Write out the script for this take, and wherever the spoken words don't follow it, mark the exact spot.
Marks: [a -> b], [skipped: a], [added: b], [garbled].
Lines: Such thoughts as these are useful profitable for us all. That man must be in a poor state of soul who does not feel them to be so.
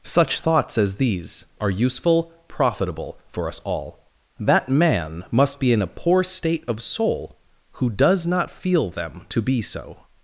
Such thoughts as these are useful profitable for us all. That man must be in a poor state of soul who does not feel them to be so.